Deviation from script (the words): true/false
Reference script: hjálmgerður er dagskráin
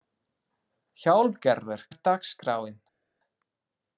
false